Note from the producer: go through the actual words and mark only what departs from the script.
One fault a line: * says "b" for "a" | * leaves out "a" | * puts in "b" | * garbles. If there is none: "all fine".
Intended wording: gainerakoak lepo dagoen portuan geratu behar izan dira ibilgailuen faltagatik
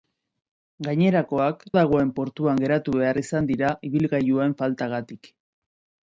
* leaves out "lepo"